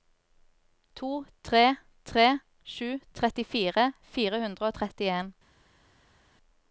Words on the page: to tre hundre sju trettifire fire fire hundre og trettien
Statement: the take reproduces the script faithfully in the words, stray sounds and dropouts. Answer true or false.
false